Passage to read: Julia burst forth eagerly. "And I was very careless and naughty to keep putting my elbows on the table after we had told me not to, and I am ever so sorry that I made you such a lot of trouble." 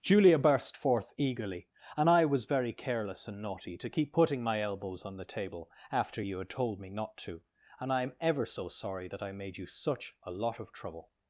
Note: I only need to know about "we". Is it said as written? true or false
false